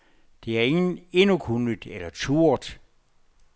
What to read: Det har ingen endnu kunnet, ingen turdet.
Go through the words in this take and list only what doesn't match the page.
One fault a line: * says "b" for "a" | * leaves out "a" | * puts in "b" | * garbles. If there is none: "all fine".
* says "eller" for "ingen"